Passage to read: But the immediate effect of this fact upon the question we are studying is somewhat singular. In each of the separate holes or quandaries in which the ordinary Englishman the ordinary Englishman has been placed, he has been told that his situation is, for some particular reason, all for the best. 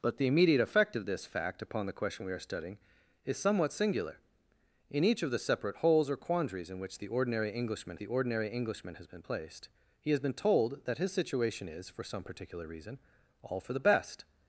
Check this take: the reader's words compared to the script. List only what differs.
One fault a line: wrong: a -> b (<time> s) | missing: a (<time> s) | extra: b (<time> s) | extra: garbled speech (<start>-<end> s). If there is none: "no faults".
no faults